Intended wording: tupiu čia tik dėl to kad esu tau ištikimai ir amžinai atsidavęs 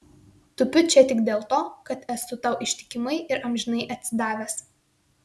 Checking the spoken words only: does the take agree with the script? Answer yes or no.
yes